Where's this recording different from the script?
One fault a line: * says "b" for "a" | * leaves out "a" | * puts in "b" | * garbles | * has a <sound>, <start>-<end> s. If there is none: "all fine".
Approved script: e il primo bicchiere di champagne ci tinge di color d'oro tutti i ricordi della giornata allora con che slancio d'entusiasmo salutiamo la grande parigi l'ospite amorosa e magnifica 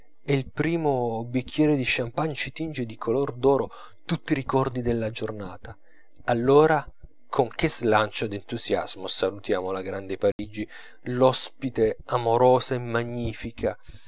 * has a dropout, 10.3-10.4 s